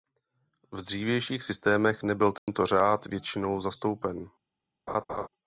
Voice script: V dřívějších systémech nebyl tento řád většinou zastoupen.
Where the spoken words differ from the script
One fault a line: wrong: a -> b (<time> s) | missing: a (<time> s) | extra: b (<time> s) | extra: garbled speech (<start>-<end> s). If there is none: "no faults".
no faults